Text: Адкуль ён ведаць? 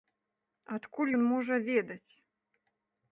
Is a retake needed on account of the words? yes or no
yes